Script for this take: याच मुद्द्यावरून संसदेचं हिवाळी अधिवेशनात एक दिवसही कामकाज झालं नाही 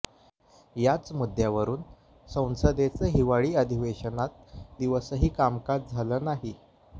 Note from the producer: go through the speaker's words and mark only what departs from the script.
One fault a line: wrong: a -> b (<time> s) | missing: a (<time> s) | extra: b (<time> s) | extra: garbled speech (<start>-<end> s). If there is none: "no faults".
missing: एक (4.8 s)